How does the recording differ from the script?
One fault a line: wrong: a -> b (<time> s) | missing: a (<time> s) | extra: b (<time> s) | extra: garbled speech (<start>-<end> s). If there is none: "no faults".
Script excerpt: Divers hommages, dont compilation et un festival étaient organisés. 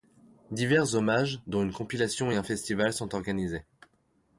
extra: une (1.6 s)
wrong: étaient -> sont (2.9 s)